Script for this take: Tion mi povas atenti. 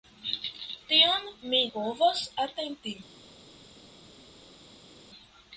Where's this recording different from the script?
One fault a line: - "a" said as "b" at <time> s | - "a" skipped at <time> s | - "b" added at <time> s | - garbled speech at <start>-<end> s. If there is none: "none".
none